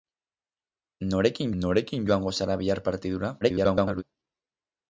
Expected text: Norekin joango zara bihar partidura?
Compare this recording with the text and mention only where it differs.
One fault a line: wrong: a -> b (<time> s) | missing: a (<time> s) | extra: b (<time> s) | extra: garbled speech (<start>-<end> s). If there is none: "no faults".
extra: norekin (1.6 s)
extra: garbled speech (3.4-4.0 s)